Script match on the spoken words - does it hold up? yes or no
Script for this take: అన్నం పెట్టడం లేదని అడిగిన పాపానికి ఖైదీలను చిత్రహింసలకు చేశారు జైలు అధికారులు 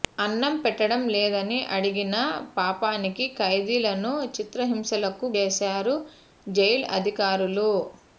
yes